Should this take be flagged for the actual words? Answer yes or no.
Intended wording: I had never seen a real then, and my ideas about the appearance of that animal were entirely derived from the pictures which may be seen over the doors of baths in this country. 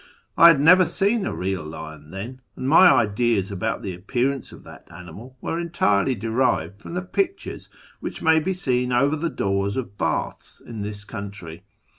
yes